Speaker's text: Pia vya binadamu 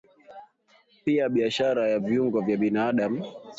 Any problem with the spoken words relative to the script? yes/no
yes